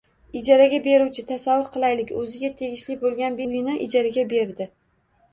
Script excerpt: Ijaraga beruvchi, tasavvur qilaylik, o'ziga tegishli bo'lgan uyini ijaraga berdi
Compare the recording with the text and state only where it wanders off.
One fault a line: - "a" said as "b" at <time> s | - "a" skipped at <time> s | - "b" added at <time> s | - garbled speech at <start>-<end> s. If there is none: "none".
none